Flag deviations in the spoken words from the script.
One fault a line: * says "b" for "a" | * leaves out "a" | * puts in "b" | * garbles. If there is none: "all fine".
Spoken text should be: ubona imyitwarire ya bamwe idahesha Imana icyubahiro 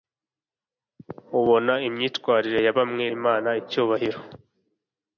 * leaves out "idahesha"